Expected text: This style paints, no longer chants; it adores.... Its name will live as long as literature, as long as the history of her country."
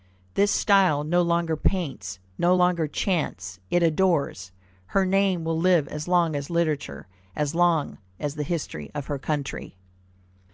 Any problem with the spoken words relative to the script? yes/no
yes